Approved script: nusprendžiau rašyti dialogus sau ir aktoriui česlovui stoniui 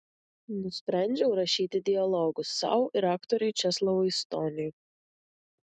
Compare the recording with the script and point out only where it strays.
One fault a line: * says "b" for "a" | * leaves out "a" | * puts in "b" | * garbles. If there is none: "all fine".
all fine